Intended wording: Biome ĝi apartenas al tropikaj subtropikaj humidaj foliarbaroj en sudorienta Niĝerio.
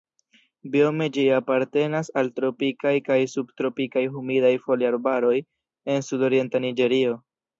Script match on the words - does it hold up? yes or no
no